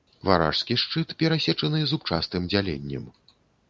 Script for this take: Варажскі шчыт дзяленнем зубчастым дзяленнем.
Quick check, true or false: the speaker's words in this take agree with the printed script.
false